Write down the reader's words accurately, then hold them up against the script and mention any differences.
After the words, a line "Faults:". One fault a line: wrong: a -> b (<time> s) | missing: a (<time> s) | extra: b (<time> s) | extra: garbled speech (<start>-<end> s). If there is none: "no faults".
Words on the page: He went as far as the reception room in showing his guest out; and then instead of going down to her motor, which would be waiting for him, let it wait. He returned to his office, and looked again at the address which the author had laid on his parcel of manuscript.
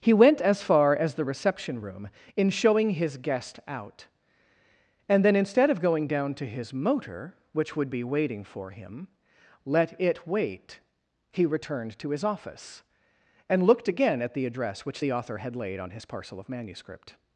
He went as far as the reception room in showing his guest out; and then instead of going down to his motor, which would be waiting for him, let it wait. He returned to his office, and looked again at the address which the author had laid on his parcel of manuscript.
Faults:
wrong: her -> his (6.5 s)